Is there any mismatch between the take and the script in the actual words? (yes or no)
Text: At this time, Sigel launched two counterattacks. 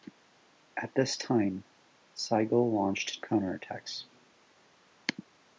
yes